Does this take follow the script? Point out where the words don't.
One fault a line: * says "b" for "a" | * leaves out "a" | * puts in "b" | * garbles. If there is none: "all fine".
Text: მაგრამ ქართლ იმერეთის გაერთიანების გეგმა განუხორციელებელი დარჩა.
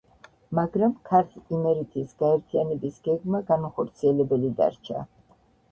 all fine